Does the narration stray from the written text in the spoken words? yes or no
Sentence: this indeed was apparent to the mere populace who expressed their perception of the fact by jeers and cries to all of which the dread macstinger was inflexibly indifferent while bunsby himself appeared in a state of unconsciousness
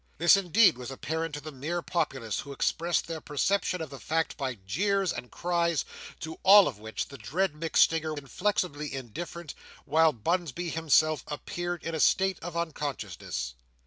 yes